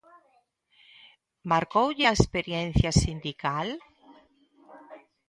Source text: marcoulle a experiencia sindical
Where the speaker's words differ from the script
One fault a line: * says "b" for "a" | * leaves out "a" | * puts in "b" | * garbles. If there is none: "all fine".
all fine